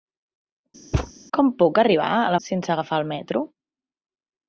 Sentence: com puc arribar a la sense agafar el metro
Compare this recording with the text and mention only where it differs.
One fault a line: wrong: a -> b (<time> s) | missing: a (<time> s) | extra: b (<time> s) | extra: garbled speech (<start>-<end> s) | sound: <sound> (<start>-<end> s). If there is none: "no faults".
sound: thud (0.9-1.1 s)